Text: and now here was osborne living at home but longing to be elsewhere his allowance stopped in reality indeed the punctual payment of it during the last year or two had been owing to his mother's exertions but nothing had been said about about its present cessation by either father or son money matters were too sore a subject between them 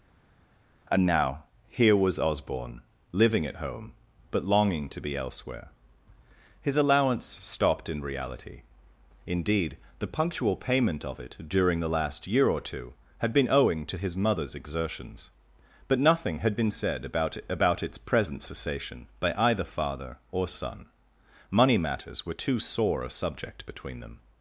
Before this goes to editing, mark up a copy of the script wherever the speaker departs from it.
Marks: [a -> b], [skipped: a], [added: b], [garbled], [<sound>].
and now here was osborne living at home but longing to be elsewhere his allowance stopped in reality indeed the punctual payment of it during the last year or two had been owing to his mother's exertions but nothing had been said about about its present cessation by either father or son money matters were too sore a subject between them